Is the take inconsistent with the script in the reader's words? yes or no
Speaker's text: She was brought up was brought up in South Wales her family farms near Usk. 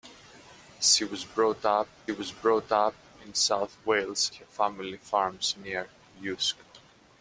no